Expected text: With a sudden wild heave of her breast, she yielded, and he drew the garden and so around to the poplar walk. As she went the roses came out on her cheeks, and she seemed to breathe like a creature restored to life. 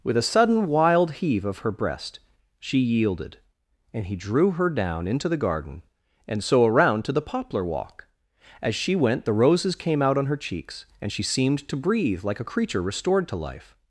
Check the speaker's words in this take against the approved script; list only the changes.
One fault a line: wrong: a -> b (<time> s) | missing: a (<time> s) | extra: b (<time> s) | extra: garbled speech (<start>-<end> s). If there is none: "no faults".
extra: her down into (4.5 s)